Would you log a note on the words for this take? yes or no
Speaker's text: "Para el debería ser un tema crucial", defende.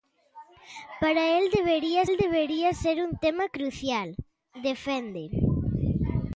yes